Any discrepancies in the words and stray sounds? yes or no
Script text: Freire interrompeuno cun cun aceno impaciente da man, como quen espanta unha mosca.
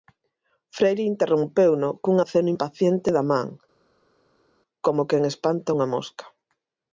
yes